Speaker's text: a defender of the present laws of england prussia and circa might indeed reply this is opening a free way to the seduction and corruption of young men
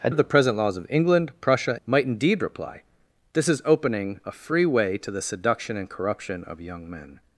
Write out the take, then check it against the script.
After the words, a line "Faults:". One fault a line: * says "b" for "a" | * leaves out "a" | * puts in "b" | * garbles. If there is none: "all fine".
a of the present laws of england prussia might indeed reply this is opening a free way to the seduction and corruption of young men
Faults:
* leaves out "defender"
* leaves out "and circa"